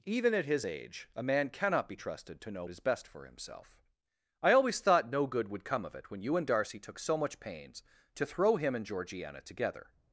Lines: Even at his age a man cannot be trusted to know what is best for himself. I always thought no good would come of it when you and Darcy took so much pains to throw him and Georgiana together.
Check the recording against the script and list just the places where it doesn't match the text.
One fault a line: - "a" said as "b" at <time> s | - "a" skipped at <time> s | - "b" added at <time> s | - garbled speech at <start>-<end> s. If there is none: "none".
- "what" skipped at 2.6 s